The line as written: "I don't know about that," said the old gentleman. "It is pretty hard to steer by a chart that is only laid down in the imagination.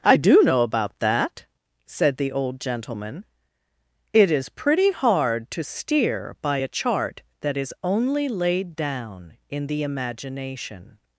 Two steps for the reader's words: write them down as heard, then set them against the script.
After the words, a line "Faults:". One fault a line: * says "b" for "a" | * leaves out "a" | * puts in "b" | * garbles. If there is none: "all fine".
"I do know about that," said the old gentleman. "It is pretty hard to steer by a chart that is only laid down in the imagination.
Faults:
* says "do" for "don't"